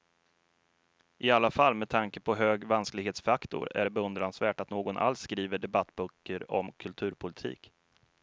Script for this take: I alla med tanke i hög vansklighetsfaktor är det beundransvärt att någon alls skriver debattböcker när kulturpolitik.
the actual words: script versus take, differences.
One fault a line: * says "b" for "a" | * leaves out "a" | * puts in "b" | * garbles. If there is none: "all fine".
* puts in "fall"
* says "på" for "i"
* says "om" for "när"